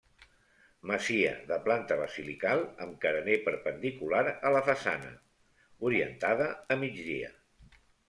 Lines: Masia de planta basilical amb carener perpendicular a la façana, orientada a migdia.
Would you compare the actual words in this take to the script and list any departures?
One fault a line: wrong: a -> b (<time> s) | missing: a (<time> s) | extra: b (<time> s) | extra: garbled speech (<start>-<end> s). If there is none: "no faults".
no faults